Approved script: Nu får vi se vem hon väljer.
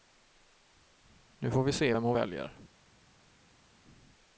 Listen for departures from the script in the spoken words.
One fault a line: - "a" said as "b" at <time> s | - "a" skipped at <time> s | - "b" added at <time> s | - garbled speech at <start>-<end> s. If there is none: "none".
none